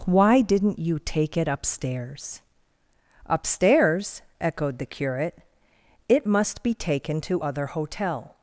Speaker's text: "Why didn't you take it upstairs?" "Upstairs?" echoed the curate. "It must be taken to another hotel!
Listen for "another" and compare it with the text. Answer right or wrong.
wrong